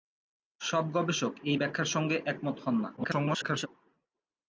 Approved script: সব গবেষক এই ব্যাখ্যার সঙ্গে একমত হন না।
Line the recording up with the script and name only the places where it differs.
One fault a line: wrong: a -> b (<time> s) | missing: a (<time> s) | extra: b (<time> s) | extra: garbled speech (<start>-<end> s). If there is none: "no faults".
extra: garbled speech (3.0-3.7 s)